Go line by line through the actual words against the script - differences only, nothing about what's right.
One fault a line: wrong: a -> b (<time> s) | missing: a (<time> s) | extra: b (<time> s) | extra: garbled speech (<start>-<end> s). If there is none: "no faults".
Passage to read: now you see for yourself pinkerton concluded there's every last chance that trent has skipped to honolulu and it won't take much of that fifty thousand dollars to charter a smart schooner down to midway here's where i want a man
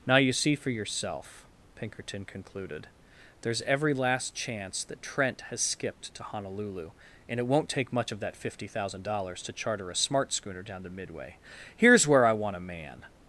no faults